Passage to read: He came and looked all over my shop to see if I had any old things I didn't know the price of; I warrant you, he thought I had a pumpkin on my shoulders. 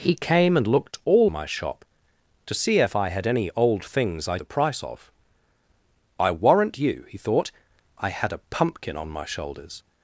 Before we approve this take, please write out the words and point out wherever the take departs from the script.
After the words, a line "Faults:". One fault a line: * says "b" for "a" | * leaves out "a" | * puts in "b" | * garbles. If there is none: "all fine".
He came and looked all my shop to see if I had any old things I the price of; I warrant you, he thought I had a pumpkin on my shoulders.
Faults:
* leaves out "over"
* leaves out "didn't know"